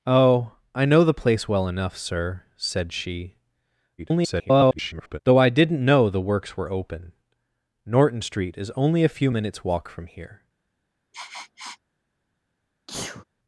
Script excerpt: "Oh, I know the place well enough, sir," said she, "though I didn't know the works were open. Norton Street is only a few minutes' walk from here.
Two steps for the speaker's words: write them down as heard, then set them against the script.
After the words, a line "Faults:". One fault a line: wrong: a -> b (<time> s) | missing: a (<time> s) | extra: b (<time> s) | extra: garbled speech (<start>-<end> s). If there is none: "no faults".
"Oh, I know the place well enough, sir," said she, [garbled] "though I didn't know the works were open. Norton Street is only a few minutes' walk from here.
Faults:
extra: garbled speech (4.0-5.2 s)